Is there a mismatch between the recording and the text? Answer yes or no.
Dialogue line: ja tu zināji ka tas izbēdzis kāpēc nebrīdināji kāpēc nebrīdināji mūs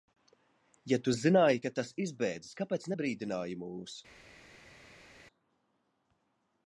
yes